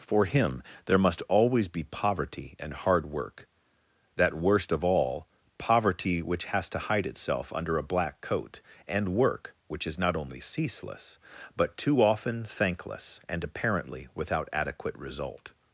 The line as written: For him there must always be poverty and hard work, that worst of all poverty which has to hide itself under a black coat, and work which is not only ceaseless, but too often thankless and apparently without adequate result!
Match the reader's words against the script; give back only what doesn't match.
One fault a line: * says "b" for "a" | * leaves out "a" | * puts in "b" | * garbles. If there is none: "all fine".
all fine